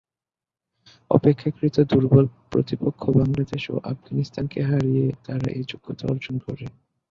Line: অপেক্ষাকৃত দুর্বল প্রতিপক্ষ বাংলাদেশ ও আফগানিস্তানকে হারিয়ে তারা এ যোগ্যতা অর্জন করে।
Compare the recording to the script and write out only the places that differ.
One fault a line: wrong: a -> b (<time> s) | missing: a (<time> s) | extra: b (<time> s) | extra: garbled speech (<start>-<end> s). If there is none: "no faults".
no faults